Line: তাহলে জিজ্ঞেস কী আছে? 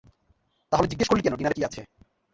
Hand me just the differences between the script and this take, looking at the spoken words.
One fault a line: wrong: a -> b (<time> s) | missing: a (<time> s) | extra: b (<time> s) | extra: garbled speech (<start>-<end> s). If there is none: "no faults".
extra: করলি কেন ডিনারে (1.1 s)